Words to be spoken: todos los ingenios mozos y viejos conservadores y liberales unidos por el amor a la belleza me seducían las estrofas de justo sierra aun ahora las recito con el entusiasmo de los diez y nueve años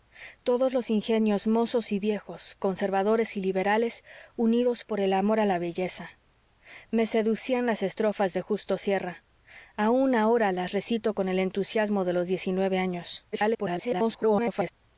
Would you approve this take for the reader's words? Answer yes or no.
no